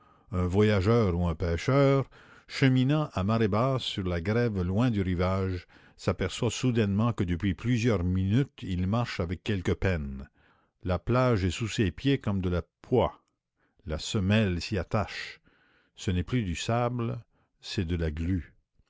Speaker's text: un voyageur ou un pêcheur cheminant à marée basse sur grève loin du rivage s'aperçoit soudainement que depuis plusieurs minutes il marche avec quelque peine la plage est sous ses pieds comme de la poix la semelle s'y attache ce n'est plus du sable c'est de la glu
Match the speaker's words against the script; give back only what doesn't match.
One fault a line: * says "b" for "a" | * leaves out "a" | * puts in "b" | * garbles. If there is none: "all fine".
* puts in "la"